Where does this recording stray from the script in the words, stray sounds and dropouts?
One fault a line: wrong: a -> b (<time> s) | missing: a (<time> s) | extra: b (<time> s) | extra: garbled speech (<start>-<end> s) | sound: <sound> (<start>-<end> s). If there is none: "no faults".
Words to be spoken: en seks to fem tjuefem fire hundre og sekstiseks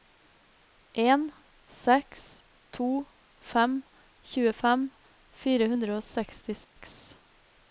sound: dropout (6.6-6.8 s)